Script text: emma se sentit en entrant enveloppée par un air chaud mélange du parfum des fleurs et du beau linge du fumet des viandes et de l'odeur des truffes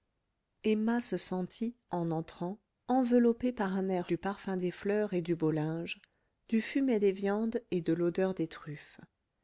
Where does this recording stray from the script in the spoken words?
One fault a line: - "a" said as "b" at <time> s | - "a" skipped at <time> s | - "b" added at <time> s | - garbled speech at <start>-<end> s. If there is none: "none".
- "chaud mélange" skipped at 4.1 s